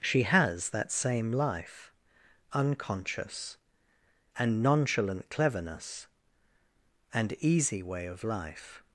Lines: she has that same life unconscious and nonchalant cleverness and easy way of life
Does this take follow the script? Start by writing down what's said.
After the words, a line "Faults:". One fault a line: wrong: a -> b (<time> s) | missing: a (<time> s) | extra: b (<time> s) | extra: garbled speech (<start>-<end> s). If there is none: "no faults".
she has that same life unconscious and nonchalant cleverness and easy way of life
Faults:
no faults